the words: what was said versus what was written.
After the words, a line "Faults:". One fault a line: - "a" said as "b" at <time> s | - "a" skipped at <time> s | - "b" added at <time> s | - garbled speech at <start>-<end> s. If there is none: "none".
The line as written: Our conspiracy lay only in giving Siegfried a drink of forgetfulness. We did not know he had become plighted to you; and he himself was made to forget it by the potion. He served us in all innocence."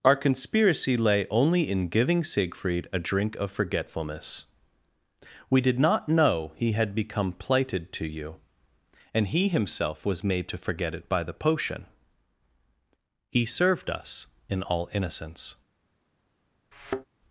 Our conspiracy lay only in giving Siegfried a drink of forgetfulness. We did not know he had become plighted to you; and he himself was made to forget it by the potion. He served us in all innocence."
Faults:
none